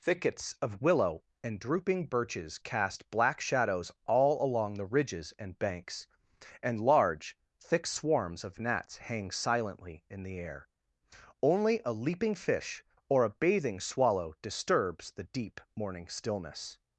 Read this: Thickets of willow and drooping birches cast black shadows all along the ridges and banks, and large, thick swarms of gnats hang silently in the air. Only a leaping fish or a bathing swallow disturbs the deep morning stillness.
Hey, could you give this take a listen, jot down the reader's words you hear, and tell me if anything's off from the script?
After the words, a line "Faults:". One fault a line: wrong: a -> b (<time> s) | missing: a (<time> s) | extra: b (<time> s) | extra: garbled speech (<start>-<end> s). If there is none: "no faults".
Thickets of willow and drooping birches cast black shadows all along the ridges and banks, and large, thick swarms of gnats hang silently in the air. Only a leaping fish or a bathing swallow disturbs the deep morning stillness.
Faults:
no faults